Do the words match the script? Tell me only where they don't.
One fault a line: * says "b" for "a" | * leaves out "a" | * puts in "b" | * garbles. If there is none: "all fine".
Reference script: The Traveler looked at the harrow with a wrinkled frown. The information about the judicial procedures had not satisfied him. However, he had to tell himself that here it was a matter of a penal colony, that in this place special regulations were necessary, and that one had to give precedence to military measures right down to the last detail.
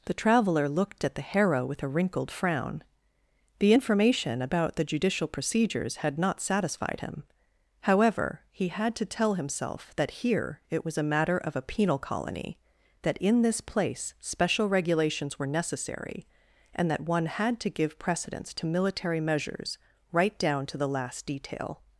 all fine